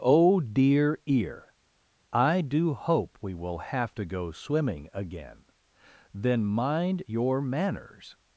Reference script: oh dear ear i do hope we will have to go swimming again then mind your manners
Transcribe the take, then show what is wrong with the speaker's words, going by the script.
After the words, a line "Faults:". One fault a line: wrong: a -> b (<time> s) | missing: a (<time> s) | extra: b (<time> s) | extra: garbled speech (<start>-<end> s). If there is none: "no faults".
oh dear ear i do hope we will have to go swimming again then mind your manners
Faults:
no faults